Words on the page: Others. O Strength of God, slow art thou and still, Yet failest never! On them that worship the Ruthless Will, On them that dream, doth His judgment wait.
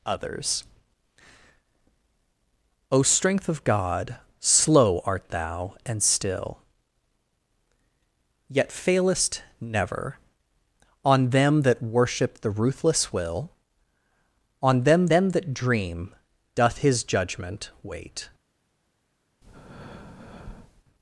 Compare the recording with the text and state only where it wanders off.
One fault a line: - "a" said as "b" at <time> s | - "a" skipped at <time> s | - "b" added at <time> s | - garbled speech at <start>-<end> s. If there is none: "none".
- "them" added at 15.1 s